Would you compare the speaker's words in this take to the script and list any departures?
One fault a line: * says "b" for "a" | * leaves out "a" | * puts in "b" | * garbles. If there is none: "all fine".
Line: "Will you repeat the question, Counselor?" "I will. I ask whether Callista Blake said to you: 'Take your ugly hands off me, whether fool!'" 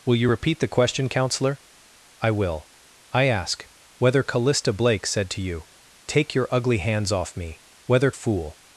all fine